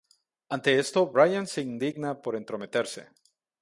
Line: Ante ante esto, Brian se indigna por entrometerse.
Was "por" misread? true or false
false